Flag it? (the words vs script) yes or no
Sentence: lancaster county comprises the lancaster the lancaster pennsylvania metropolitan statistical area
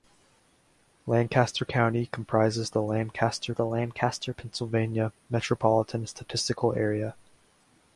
no